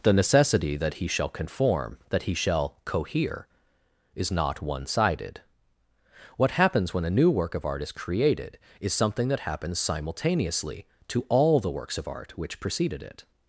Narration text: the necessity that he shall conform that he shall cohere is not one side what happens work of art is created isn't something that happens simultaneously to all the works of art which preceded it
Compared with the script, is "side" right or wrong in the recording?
wrong